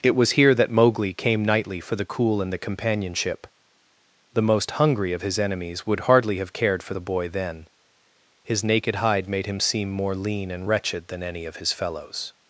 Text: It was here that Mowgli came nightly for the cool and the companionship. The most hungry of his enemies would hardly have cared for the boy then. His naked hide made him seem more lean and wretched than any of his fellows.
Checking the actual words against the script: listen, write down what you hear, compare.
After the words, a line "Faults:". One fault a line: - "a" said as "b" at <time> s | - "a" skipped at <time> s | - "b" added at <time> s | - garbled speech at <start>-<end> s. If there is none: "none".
It was here that Mowgli came nightly for the cool and the companionship. The most hungry of his enemies would hardly have cared for the boy then. His naked hide made him seem more lean and wretched than any of his fellows.
Faults:
none